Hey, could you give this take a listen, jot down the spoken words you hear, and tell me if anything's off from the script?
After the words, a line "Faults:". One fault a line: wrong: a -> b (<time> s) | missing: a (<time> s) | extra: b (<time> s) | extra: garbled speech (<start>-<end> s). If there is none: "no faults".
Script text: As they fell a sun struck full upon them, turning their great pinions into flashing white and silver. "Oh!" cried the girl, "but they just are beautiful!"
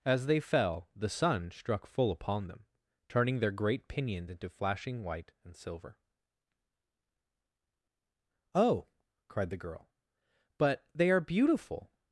As they fell the sun struck full upon them, turning their great pinions into flashing white and silver. "Oh!" cried the girl, "but they are beautiful!"
Faults:
wrong: a -> the (0.9 s)
missing: just (11.1 s)